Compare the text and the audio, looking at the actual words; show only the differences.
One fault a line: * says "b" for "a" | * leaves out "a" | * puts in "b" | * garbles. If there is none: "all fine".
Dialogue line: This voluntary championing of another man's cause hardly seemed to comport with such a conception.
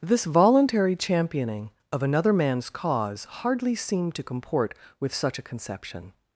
all fine